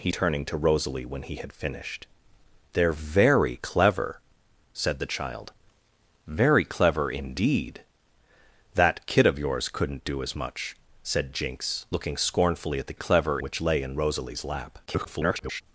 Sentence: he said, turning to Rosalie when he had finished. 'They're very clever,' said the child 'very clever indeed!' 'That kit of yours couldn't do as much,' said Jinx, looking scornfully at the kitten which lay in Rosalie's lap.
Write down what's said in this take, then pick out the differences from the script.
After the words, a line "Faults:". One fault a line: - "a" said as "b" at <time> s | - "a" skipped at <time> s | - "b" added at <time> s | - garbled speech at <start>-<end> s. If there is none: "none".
he turning to Rosalie when he had finished. 'They're very clever,' said the child 'very clever indeed!' 'That kit of yours couldn't do as much,' said Jinx, looking scornfully at the clever which lay in Rosalie's lap. [garbled]
Faults:
- "said" skipped at 0.1 s
- "kitten" said as "clever" at 12.9 s
- garbled speech at 14.9-15.6 s